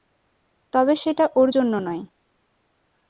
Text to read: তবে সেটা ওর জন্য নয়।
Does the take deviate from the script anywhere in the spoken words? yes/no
no